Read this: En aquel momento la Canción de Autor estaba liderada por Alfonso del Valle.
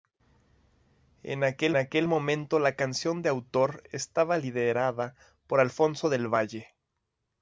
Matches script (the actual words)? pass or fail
fail